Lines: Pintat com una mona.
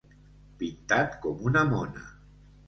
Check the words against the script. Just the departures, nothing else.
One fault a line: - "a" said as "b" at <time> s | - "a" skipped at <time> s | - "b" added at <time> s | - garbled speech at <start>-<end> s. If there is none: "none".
none